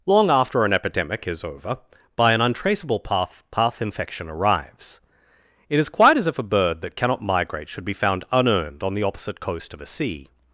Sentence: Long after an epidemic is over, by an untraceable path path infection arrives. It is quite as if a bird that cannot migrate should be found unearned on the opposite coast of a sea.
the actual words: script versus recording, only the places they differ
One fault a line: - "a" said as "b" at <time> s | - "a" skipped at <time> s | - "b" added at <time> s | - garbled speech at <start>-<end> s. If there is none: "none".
none